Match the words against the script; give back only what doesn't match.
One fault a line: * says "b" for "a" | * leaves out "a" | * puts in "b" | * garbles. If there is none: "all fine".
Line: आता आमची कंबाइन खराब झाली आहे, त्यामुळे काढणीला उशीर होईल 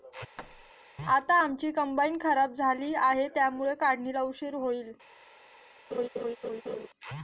all fine